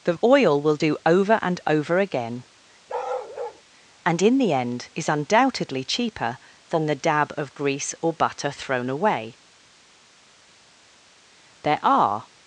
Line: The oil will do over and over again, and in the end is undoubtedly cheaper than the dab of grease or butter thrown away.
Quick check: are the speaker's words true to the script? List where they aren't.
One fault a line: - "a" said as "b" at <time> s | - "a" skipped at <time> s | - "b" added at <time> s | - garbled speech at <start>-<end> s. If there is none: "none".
- "There are" added at 11.6 s